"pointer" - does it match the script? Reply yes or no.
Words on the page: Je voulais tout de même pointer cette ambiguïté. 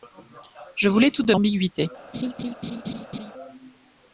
no